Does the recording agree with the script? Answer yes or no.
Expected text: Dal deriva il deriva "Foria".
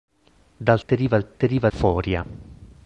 yes